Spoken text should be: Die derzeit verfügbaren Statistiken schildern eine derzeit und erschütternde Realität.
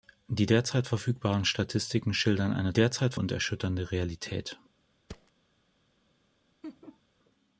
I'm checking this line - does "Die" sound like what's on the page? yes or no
yes